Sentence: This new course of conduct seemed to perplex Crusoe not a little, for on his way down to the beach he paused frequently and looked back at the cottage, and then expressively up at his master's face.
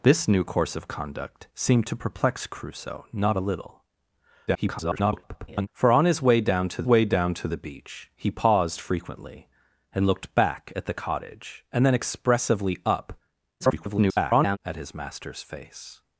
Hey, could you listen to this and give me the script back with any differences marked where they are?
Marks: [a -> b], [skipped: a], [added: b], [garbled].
This new course of conduct seemed to perplex Crusoe not a little, [garbled] for on his way down to [added: way down to] the beach he paused frequently and looked back at the cottage, and then expressively up [garbled] at his master's face.